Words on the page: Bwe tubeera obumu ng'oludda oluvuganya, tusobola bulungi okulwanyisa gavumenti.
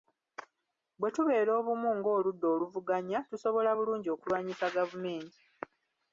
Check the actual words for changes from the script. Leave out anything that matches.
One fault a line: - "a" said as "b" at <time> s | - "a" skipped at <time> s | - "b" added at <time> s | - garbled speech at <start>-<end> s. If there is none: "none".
none